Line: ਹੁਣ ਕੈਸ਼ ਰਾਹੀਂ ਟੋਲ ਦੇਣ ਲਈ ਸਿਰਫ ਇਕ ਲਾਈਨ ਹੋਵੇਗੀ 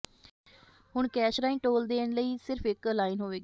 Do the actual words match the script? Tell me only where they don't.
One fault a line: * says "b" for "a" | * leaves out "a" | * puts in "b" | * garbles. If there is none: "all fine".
all fine